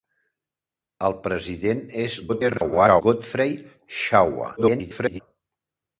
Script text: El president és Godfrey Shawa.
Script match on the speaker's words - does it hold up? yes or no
no